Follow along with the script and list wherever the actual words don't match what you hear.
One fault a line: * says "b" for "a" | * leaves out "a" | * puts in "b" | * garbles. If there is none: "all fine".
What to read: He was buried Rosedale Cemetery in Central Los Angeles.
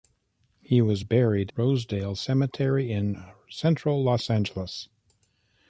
all fine